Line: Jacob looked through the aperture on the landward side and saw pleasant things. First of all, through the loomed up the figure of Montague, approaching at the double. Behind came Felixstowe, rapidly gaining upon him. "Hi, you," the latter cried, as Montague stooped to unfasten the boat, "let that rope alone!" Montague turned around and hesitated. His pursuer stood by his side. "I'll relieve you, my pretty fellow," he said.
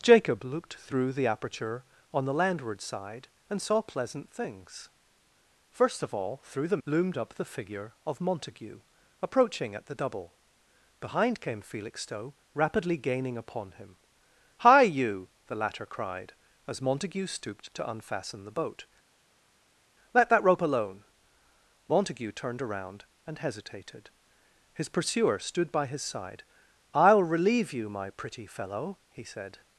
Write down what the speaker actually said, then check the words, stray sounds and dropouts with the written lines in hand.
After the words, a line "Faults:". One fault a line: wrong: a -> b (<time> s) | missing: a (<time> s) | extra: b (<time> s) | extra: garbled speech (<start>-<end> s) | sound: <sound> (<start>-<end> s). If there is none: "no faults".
Jacob looked through the aperture on the landward side and saw pleasant things. First of all, through the loomed up the figure of Montague, approaching at the double. Behind came Felixstowe, rapidly gaining upon him. "Hi, you," the latter cried, as Montague stooped to unfasten the boat, "let that rope alone!" Montague turned around and hesitated. His pursuer stood by his side. "I'll relieve you, my pretty fellow," he said.
Faults:
no faults